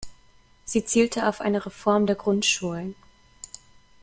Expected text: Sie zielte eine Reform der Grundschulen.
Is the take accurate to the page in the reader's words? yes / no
no